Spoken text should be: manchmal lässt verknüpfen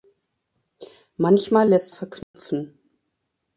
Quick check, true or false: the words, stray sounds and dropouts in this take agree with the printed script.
false